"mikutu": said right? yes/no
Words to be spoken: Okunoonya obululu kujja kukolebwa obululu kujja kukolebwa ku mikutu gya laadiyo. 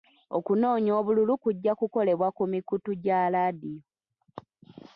yes